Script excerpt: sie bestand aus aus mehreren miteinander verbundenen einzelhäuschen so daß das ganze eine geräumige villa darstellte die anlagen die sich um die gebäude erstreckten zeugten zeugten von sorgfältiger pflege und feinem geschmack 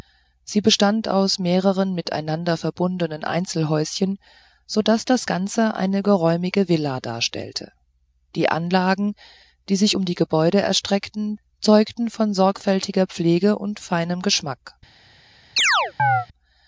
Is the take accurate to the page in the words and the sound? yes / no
no